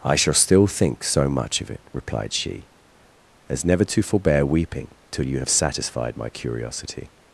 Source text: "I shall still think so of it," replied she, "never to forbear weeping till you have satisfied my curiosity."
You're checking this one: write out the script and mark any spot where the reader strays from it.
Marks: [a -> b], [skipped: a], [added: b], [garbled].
"I shall still think so [added: much] of it," replied she, [added: as] "never to forbear weeping till you have satisfied my curiosity."